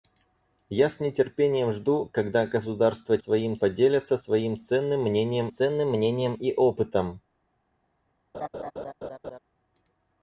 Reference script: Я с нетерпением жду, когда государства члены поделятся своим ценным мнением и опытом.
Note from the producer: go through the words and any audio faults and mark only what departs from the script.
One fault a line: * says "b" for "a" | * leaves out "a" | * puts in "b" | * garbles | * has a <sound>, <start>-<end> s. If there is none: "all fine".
* says "своим" for "члены"
* puts in "ценным мнением"
* has a laugh, 8.3-9.4 s